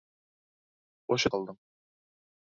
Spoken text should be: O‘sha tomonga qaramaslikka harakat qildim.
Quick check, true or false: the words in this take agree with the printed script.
false